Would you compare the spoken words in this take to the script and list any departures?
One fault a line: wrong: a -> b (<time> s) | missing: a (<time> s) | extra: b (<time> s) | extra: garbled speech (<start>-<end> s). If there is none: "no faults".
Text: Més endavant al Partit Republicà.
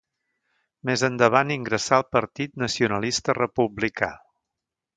extra: ingressà (1.6 s)
extra: Nacionalista (2.6 s)